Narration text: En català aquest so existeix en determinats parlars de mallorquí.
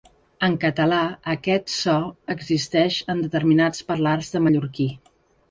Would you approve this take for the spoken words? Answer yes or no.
yes